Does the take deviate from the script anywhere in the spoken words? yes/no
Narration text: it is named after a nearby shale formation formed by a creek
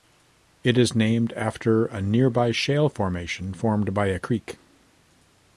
no